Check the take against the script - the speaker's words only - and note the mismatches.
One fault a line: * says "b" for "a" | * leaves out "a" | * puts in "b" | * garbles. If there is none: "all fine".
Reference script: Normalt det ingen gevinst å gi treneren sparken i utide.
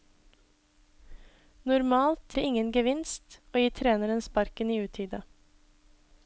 all fine